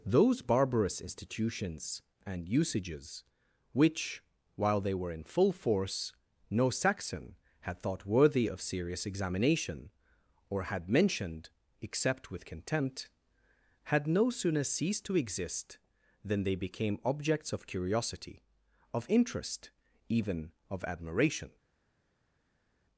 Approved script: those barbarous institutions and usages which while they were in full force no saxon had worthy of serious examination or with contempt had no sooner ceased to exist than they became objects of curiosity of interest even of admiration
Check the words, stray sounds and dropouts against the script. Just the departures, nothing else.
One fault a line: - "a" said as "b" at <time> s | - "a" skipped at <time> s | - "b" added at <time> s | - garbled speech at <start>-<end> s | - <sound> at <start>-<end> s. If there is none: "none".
- "thought" added at 7.8 s
- "had mentioned except" added at 10.6 s